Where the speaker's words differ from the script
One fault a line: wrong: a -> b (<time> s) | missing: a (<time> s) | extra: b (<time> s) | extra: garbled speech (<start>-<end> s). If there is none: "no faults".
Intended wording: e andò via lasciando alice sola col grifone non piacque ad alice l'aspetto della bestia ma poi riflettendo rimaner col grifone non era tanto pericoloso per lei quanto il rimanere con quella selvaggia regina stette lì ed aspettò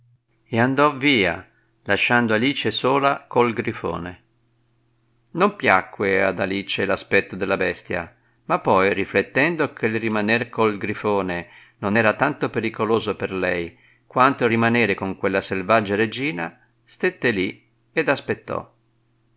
extra: che il (9.7 s)